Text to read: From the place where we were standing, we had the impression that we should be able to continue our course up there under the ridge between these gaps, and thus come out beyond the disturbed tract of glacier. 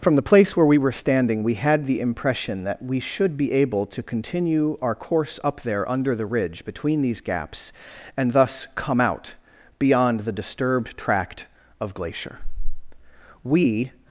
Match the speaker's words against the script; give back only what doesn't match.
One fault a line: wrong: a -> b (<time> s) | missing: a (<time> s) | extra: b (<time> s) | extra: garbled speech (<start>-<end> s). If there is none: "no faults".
extra: We (13.4 s)